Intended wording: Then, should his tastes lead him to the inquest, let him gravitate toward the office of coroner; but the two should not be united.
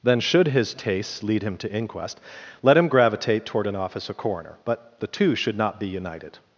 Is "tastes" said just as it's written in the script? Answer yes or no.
yes